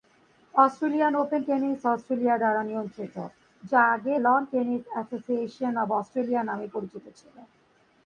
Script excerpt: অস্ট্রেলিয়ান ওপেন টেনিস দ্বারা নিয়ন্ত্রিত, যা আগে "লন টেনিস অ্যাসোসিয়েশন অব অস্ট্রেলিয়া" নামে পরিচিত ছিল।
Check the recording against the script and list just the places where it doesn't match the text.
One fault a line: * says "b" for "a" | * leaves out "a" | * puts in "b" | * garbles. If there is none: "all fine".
* puts in "অস্ট্রেলিয়া"